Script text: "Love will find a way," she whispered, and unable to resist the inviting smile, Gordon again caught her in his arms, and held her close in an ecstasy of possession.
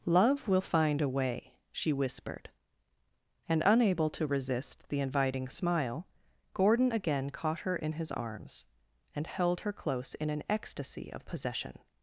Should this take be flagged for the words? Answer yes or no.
no